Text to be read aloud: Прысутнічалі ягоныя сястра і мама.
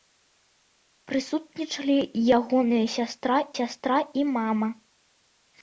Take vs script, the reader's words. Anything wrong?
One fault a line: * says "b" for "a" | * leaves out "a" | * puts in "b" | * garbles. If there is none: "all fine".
* puts in "сястра"